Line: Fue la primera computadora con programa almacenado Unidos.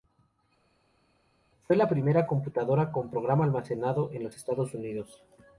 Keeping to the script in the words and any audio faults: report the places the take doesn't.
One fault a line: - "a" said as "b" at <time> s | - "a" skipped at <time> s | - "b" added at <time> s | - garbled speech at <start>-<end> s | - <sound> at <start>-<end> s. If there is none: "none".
- "en los Estados" added at 4.1 s